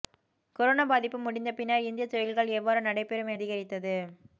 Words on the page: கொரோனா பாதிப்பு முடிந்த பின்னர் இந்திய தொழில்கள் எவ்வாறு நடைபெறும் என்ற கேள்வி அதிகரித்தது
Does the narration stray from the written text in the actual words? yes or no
yes